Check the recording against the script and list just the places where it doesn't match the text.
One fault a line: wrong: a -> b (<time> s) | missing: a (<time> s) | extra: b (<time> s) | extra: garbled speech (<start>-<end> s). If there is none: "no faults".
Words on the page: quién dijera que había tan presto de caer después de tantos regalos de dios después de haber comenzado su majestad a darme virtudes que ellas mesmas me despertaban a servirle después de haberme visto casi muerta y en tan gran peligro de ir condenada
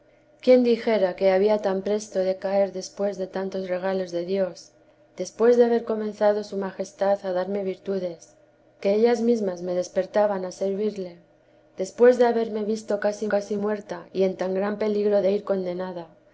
extra: casi (13.3 s)